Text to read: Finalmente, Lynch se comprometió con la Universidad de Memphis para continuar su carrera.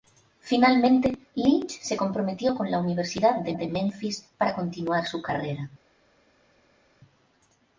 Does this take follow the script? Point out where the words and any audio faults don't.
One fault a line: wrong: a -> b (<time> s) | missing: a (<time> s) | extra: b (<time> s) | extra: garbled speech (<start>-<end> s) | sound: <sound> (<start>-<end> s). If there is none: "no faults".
extra: de (3.5 s)